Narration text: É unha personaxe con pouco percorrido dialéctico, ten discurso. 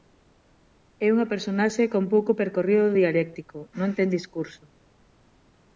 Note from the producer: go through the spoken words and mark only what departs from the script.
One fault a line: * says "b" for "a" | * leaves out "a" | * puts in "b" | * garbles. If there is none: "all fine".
* puts in "non"